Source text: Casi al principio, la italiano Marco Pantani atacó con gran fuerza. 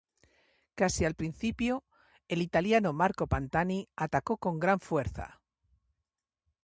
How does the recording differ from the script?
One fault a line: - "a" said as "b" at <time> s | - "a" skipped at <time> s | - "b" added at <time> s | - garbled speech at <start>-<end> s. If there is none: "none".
- "la" said as "el" at 2.3 s